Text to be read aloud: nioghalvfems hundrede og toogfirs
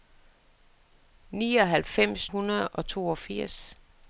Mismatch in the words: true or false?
false